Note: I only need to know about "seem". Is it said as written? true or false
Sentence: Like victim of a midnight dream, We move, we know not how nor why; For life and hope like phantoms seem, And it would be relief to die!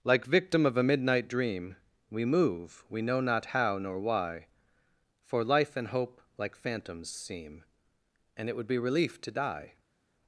true